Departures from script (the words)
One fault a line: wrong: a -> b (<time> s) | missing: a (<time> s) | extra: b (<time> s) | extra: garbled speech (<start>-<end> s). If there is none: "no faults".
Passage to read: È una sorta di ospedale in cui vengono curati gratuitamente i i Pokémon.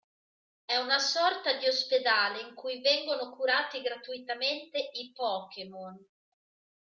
missing: i (5.1 s)